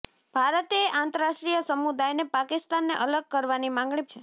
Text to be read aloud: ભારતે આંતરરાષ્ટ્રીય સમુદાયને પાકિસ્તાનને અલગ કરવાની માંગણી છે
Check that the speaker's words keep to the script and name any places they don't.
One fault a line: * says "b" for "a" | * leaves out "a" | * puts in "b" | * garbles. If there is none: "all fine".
all fine